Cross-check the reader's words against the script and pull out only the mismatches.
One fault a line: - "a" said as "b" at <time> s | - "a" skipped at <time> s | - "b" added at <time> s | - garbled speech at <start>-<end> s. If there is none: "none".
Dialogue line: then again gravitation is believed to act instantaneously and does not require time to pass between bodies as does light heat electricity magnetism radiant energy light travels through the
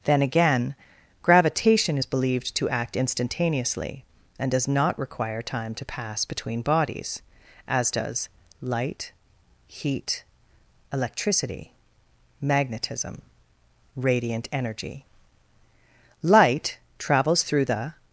none